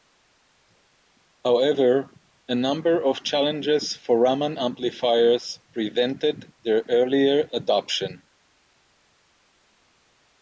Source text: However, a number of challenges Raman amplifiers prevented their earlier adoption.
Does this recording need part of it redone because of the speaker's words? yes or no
yes